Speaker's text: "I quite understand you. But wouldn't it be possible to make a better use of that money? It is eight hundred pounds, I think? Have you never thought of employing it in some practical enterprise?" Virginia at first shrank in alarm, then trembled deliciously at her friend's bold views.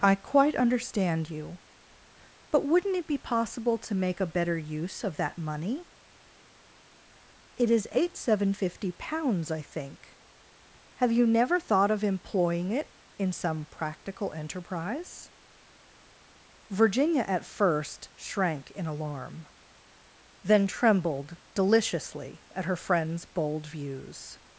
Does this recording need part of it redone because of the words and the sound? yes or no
yes